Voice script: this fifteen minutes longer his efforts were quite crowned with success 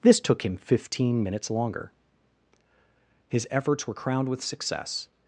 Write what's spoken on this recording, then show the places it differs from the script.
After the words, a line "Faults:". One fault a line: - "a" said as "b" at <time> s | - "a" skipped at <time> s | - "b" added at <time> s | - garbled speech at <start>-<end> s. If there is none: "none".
this took him fifteen minutes longer his efforts were crowned with success
Faults:
- "took him" added at 0.2 s
- "quite" skipped at 3.9 s